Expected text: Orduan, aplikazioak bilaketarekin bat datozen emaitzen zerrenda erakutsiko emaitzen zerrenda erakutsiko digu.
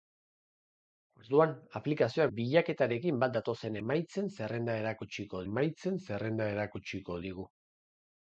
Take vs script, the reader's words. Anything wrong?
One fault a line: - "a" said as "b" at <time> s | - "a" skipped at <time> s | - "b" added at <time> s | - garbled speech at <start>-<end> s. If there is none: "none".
none